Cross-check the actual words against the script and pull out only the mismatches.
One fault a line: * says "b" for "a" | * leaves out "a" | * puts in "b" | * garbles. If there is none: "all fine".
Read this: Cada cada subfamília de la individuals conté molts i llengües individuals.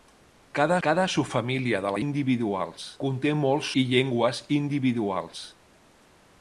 all fine